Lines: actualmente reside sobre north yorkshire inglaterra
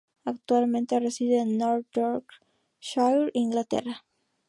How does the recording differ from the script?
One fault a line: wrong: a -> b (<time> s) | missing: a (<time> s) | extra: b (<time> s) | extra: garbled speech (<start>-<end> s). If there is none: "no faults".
wrong: sobre -> en (1.4 s)